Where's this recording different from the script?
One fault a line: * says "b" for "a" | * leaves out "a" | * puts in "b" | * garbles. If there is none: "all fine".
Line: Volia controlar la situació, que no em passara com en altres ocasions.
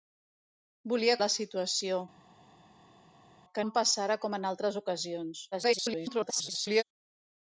* leaves out "controlar"
* leaves out "no"
* garbles